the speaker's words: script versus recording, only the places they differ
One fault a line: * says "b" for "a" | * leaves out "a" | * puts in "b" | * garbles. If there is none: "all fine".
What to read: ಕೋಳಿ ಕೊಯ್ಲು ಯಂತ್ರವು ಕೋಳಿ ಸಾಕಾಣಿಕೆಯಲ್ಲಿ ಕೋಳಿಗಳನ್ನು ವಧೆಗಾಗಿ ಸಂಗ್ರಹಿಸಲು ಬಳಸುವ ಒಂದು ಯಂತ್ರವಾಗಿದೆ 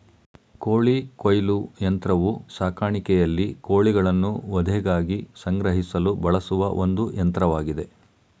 * leaves out "ಕೋಳಿ"